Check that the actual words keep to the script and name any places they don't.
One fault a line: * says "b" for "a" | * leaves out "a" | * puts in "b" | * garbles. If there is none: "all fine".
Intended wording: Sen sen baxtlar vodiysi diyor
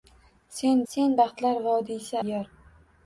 all fine